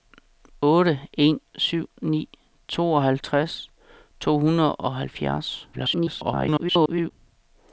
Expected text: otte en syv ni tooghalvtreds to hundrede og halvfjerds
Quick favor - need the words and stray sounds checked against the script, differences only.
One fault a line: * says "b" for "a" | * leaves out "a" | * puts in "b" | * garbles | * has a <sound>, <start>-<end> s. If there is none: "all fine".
* garbles